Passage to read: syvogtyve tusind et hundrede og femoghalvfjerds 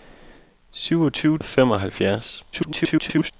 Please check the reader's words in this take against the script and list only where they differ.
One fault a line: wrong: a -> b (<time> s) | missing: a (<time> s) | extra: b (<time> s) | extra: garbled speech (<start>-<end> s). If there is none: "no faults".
missing: tusind et hundrede (1.4 s)
extra: garbled speech (2.5-3.3 s)